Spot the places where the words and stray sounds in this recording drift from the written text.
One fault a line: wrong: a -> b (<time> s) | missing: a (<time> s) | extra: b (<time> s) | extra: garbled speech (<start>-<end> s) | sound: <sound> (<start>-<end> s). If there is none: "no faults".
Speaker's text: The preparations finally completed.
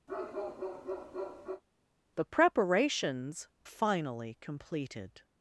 sound: bark (0.1-1.6 s)